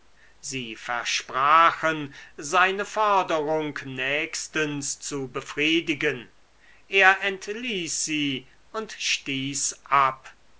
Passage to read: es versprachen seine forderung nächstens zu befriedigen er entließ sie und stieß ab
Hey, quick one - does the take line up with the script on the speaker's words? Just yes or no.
no